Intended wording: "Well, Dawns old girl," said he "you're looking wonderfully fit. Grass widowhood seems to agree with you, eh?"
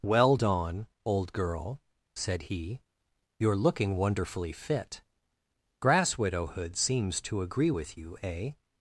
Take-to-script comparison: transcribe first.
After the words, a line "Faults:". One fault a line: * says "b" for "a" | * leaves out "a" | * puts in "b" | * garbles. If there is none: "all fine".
"Well, Dawn old girl," said he "you're looking wonderfully fit. Grass widowhood seems to agree with you, eh?"
Faults:
* says "Dawn" for "Dawns"